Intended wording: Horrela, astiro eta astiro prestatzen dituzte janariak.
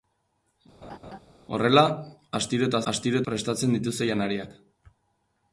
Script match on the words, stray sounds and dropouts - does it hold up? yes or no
no